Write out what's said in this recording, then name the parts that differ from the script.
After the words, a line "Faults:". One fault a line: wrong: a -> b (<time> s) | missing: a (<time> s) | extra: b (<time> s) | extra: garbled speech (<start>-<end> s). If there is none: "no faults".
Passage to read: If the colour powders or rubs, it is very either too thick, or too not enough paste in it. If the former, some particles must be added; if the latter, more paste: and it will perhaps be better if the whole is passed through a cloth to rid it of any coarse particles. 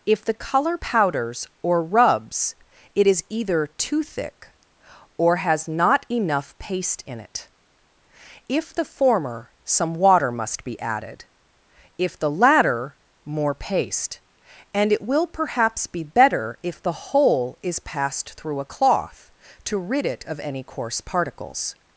If the colour powders or rubs, it is either too thick, or has not enough paste in it. If the former, some water must be added; if the latter, more paste: and it will perhaps be better if the whole is passed through a cloth to rid it of any coarse particles.
Faults:
missing: very (3.2 s)
wrong: too -> has (5.4 s)
wrong: particles -> water (9.9 s)